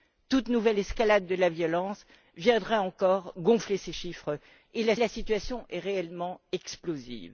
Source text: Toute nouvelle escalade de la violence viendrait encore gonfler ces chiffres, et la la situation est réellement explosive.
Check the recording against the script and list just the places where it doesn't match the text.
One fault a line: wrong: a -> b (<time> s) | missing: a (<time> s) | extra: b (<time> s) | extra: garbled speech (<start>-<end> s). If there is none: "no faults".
no faults